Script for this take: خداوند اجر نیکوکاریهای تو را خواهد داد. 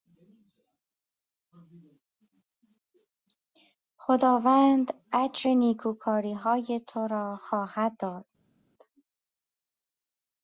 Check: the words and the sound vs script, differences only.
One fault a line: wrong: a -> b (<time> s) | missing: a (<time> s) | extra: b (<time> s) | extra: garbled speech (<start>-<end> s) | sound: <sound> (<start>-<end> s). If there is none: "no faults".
no faults